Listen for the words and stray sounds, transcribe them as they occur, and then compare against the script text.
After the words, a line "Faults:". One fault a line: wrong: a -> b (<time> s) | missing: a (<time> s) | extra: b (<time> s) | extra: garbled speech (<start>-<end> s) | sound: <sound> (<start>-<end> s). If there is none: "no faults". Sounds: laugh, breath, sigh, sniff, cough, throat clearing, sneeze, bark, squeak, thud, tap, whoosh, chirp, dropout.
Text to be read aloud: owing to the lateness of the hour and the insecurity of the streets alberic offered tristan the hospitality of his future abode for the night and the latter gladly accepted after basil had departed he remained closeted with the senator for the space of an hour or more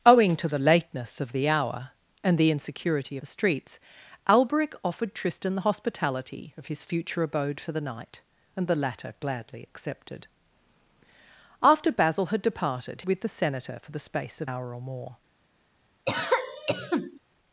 owing to the lateness of the hour and the insecurity the streets alberic offered tristan the hospitality of his future abode for the night and the latter gladly accepted after basil had departed with the senator for the space of hour or more
Faults:
missing: of (3.2 s)
missing: he remained closeted (13.0 s)
missing: an (14.5 s)
sound: cough (16.1-17.2 s)